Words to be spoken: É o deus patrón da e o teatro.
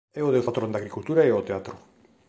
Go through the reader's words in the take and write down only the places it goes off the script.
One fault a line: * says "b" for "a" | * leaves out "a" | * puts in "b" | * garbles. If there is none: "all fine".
* puts in "agricultura"